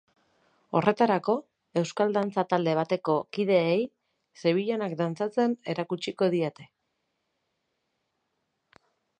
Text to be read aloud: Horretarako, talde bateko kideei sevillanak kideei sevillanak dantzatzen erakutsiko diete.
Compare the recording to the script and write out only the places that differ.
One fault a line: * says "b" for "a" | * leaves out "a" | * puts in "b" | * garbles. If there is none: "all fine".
* puts in "euskal dantza"
* leaves out "kideei sevillanak"